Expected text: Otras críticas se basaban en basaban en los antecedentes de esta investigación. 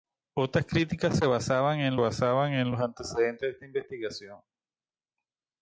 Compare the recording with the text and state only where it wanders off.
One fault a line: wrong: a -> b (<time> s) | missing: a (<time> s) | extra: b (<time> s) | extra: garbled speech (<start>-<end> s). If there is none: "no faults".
no faults